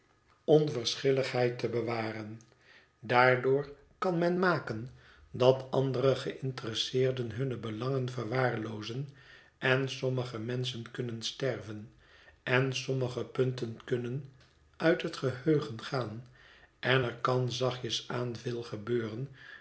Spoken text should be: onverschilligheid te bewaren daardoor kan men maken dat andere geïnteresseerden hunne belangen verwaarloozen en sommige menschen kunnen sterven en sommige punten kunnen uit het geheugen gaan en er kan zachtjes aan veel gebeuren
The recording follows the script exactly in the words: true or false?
true